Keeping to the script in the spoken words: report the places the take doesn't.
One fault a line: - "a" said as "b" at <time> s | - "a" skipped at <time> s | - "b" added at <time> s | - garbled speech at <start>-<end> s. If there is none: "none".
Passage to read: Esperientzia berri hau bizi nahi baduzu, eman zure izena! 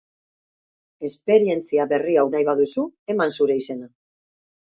- "bizi" skipped at 2.3 s